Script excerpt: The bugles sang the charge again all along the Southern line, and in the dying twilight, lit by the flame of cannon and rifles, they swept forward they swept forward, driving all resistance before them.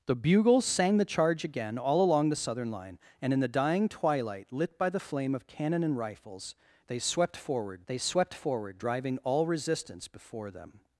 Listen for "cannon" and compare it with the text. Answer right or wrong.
right